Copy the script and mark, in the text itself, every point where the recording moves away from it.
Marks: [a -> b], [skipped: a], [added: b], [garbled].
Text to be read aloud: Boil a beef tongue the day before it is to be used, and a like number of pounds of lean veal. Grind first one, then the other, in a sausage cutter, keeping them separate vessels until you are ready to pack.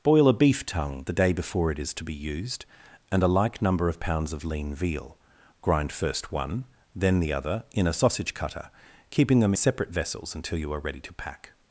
Boil a beef tongue the day before it is to be used, and a like number of pounds of lean veal. Grind first one, then the other, in a sausage cutter, keeping them separate vessels until you are ready to pack.